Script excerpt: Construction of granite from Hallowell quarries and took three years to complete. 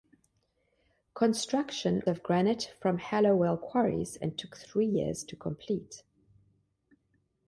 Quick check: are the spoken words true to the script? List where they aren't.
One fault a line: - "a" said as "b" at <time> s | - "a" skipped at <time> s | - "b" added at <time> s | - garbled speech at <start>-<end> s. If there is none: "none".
none